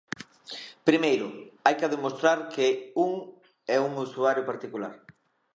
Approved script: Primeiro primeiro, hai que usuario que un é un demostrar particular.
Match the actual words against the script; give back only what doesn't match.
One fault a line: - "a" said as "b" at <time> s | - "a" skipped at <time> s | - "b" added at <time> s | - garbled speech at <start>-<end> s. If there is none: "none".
- "primeiro" skipped at 1.3 s
- "usuario" said as "demostrar" at 1.9 s
- "demostrar" said as "usuario" at 4.1 s